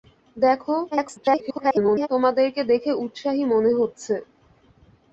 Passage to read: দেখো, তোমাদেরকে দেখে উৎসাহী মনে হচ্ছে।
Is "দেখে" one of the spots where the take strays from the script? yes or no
no